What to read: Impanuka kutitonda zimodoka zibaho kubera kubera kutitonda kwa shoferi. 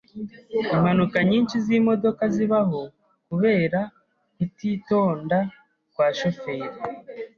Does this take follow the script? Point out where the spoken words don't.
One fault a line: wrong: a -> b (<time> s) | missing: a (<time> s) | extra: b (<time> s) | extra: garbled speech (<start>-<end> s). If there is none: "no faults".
wrong: kutitonda -> nyinshi (1.3 s)
missing: kubera (3.8 s)